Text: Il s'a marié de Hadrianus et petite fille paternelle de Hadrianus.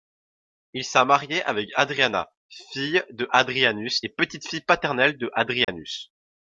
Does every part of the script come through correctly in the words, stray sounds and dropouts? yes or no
no